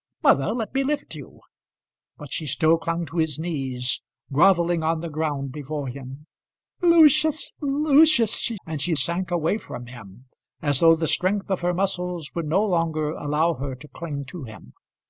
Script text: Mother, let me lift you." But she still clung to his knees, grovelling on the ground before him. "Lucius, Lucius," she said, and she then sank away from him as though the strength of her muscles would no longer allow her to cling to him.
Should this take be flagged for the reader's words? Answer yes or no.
yes